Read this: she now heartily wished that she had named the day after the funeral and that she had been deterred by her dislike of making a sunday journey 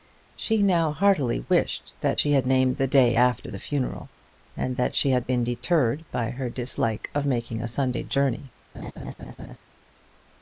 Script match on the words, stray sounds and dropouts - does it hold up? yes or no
no